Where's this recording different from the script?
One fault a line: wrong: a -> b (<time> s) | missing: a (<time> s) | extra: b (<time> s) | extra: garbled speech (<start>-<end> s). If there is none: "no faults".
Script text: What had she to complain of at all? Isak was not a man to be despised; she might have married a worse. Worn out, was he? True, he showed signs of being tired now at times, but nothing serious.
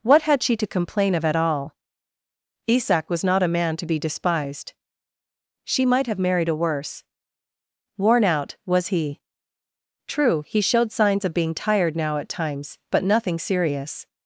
no faults